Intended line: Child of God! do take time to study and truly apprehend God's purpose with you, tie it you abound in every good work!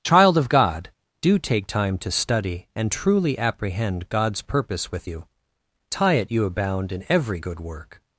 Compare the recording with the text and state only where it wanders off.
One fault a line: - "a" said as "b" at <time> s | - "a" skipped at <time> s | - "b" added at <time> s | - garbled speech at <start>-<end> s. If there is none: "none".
none